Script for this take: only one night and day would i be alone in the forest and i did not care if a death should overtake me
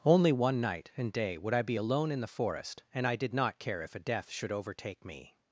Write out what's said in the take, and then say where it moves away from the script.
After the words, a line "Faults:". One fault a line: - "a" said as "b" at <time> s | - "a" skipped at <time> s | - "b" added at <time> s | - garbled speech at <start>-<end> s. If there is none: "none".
only one night and day would i be alone in the forest and i did not care if a death should overtake me
Faults:
none